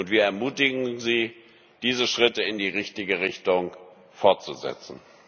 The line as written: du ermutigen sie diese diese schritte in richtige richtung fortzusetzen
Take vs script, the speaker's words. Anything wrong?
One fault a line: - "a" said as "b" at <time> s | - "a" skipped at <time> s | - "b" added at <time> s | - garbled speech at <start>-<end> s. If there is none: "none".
- "du" said as "wir" at 0.1 s
- "diese" skipped at 2.1 s
- "die" added at 2.6 s